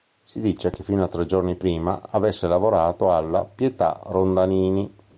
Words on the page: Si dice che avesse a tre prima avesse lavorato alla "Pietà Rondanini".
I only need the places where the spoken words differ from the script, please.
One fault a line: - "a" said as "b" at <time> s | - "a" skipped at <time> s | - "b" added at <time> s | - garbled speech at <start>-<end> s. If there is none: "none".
- "avesse" said as "fino" at 0.8 s
- "giorni" added at 1.3 s